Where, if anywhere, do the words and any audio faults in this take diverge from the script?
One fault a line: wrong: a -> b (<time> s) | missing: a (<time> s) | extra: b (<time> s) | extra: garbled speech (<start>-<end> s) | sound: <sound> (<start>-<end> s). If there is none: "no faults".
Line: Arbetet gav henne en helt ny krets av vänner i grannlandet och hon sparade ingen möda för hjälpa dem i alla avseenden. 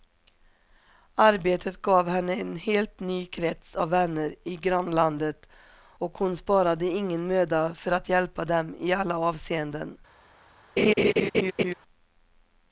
extra: att (7.9 s)
sound: laugh (10.8-11.7 s)